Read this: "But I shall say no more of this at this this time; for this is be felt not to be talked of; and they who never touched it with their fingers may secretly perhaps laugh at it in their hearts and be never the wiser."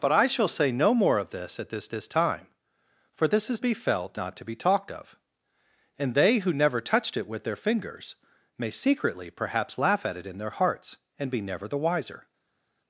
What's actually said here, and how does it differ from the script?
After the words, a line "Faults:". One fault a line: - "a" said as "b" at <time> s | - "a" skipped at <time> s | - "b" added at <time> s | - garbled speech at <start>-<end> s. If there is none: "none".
"But I shall say no more of this at this this time; for this is be felt not to be talked of; and they who never touched it with their fingers may secretly perhaps laugh at it in their hearts and be never the wiser."
Faults:
none